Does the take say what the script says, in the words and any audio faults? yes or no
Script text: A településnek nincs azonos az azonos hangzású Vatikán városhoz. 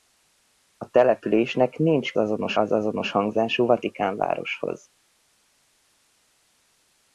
yes